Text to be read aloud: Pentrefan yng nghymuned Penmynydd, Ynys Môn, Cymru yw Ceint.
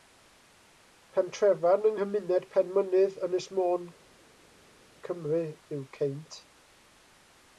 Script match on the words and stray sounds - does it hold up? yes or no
yes